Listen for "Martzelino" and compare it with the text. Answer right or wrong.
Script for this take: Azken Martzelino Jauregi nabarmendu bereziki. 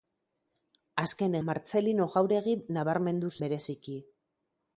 right